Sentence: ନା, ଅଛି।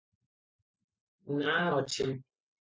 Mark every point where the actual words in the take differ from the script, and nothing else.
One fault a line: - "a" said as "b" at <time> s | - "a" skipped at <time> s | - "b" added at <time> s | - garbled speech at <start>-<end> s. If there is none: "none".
none